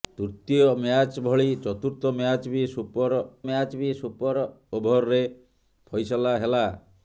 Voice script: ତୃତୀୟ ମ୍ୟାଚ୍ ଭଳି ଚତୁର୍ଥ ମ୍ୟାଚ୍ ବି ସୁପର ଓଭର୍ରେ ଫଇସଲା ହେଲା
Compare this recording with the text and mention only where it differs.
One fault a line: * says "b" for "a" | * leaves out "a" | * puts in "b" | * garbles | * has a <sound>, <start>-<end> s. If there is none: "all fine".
* puts in "ମ୍ୟାଚ୍ ବି ସୁପର"